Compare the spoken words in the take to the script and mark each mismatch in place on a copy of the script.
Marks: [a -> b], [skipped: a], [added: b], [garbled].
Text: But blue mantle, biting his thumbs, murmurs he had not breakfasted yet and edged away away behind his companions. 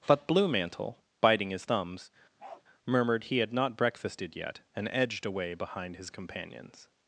But blue mantle, biting his thumbs, [murmurs -> murmured] he had not breakfasted yet and edged away [skipped: away] behind his companions.